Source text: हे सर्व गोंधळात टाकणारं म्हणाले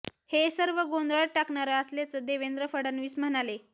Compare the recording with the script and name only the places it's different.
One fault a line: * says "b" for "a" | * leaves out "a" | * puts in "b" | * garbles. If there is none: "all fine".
* puts in "असल्याचं देवेंद्र फडणवीस"